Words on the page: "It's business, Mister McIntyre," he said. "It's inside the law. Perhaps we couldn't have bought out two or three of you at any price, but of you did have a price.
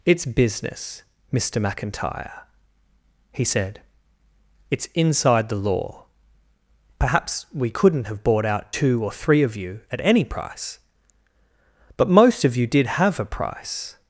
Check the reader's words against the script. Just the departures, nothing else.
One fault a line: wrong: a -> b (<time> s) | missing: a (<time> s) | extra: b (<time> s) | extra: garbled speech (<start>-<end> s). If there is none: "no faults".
extra: most (12.1 s)